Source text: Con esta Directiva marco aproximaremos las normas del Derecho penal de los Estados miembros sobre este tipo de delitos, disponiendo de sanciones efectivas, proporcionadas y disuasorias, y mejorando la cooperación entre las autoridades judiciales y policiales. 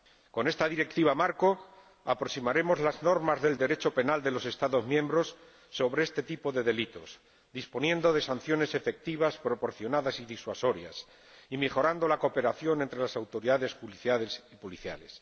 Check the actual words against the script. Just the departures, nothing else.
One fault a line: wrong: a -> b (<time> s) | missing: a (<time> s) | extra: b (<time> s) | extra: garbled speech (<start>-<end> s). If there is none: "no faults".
no faults